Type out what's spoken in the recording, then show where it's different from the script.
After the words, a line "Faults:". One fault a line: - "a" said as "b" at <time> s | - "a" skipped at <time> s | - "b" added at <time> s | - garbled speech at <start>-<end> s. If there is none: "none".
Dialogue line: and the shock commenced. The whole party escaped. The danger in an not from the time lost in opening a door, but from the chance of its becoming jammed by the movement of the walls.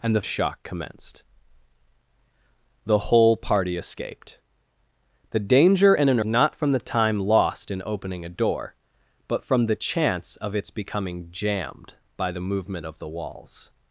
and the shock commenced. The whole party escaped. The danger in an not from the time lost in opening a door, but from the chance of its becoming jammed by the movement of the walls.
Faults:
none